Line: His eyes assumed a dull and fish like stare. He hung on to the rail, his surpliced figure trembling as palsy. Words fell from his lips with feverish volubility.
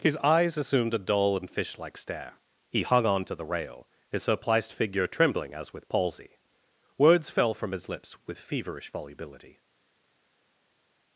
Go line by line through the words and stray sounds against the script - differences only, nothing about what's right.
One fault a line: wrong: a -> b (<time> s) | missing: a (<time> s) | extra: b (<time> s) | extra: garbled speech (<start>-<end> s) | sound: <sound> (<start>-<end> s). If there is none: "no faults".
extra: with (5.7 s)